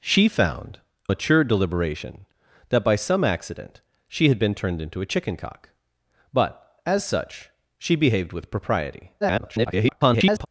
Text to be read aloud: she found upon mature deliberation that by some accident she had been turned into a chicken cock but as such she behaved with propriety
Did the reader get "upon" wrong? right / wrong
wrong